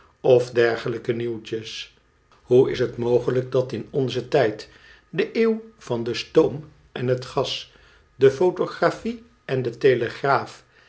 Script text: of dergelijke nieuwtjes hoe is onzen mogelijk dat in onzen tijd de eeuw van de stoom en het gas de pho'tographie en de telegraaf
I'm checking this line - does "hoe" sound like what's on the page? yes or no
yes